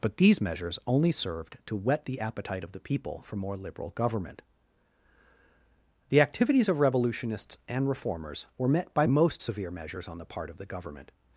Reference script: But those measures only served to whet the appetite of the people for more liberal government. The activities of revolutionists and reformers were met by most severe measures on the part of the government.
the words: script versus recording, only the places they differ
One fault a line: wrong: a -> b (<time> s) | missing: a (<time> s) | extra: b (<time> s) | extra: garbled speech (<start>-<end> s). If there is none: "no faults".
wrong: those -> these (0.2 s)